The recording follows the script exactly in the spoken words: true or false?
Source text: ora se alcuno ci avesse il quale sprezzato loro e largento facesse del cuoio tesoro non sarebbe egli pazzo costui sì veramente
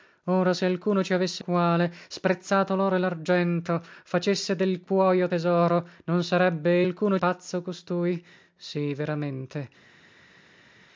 false